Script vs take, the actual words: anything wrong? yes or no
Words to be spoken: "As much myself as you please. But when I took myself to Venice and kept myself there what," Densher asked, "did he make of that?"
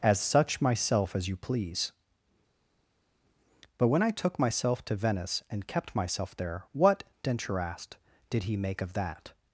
yes